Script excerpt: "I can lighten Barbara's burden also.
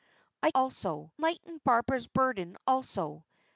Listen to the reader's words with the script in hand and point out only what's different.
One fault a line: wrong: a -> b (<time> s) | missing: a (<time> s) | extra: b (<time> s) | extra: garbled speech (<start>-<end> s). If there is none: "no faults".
wrong: can -> also (0.5 s)